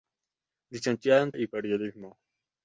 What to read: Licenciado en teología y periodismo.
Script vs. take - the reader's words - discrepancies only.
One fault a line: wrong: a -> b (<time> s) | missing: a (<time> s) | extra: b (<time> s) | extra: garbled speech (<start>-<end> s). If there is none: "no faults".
missing: teología (1.3 s)